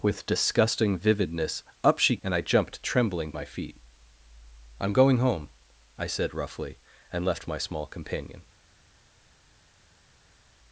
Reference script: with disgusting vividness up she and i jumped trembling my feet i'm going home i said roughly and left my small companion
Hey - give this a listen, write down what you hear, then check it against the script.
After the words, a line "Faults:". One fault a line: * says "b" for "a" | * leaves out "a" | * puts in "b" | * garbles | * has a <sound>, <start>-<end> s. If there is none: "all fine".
with disgusting vividness up she and i jumped trembling my feet i'm going home i said roughly and left my small companion
Faults:
all fine